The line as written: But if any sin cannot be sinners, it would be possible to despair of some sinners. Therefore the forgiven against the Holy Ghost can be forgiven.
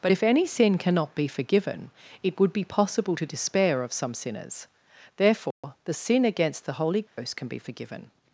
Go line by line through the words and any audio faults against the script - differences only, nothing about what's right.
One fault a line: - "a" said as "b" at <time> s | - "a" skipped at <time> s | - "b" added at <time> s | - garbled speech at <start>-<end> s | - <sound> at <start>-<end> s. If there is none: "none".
- "sinners" said as "forgiven" at 1.3 s
- dropout at 5.5-5.6 s
- "forgiven" said as "sin" at 5.9 s
- dropout at 7.1-7.2 s